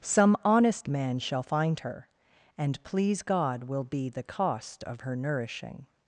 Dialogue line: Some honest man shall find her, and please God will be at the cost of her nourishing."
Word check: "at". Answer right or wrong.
wrong